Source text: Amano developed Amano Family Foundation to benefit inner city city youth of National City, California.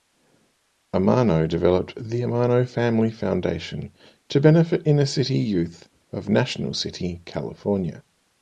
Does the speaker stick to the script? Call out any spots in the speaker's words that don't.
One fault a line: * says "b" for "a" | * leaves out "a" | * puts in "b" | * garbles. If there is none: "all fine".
* puts in "The"
* leaves out "city"